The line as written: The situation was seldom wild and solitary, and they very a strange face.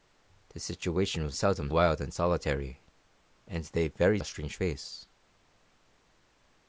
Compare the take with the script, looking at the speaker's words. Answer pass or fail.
pass